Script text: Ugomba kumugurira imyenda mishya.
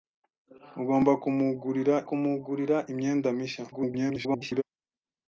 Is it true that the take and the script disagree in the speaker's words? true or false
true